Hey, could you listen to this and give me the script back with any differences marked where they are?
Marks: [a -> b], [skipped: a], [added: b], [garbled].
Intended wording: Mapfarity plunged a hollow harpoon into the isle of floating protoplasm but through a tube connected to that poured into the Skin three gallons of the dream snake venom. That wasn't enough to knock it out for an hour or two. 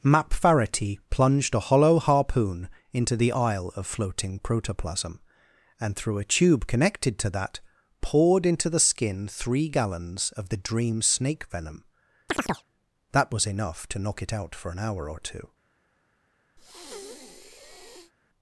Mapfarity plunged a hollow harpoon into the isle of floating protoplasm [but -> and] through a tube connected to that poured into the Skin three gallons of the dream snake venom. That [wasn't -> was] enough to knock it out for an hour or two.